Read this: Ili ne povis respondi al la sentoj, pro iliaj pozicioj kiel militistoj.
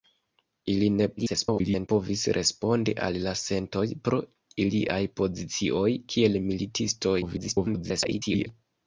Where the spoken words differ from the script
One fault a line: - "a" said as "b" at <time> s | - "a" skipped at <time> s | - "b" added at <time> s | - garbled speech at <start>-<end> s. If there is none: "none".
- garbled speech at 1.2-1.9 s
- garbled speech at 7.2-8.5 s